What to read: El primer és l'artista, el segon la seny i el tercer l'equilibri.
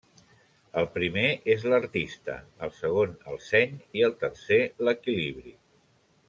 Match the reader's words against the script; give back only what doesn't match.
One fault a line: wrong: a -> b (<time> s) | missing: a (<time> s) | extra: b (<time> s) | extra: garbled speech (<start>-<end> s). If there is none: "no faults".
wrong: la -> el (3.3 s)